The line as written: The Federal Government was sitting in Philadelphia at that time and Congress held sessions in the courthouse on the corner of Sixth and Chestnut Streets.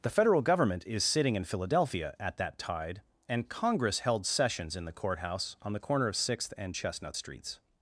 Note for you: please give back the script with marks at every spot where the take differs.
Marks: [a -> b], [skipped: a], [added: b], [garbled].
The Federal Government [was -> is] sitting in Philadelphia at that [time -> tide] and Congress held sessions in the courthouse on the corner of Sixth and Chestnut Streets.